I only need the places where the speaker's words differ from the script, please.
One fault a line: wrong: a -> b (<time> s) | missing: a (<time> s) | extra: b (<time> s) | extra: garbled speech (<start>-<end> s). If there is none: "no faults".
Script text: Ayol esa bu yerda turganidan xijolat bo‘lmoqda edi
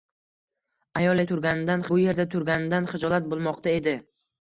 wrong: esa -> turganidan (1.3 s)